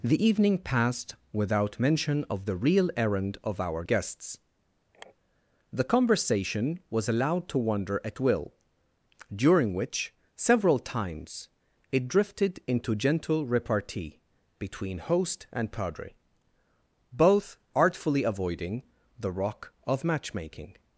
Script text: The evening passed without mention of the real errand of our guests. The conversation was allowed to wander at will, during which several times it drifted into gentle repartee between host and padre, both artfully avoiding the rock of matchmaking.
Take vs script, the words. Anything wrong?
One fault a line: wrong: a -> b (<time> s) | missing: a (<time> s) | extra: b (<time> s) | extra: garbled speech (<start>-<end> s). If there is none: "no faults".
no faults